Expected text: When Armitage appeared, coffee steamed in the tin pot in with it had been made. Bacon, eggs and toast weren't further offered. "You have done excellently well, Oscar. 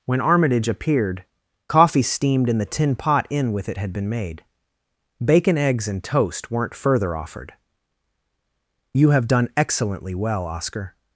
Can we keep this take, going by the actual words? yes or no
yes